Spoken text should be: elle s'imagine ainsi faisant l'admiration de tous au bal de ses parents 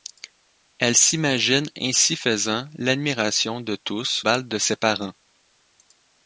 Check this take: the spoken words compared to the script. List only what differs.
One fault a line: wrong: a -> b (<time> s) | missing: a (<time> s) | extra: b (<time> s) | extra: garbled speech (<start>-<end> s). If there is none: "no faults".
missing: au (4.2 s)